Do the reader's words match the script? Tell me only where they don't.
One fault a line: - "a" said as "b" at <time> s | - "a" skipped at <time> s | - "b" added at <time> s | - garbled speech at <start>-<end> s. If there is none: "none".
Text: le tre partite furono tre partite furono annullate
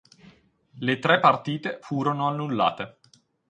- "tre partite furono" skipped at 2.3 s